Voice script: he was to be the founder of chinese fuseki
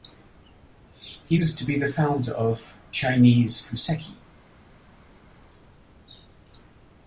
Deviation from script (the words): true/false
false